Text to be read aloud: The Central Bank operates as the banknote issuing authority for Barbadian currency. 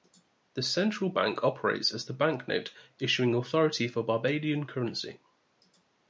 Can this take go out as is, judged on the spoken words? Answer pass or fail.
pass